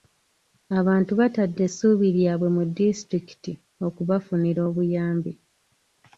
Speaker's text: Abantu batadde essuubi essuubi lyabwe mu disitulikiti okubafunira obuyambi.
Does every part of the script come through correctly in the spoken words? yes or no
no